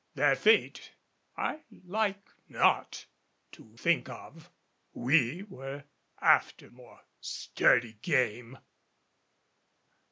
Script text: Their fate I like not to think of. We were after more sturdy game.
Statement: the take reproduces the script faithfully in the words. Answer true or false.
true